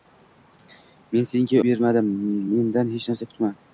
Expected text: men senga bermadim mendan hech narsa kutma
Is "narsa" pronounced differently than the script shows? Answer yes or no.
no